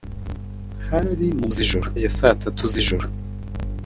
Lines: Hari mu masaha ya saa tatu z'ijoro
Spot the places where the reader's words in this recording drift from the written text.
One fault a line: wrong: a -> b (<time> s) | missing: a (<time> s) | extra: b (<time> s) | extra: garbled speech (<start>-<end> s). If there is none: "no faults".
wrong: masaha -> z'ijoro (1.5 s)